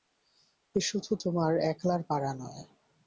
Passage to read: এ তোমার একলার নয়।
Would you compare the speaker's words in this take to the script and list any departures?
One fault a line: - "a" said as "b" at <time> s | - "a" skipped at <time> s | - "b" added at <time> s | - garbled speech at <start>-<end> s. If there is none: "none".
- "শুধু" added at 0.8 s
- "পারা" added at 2.0 s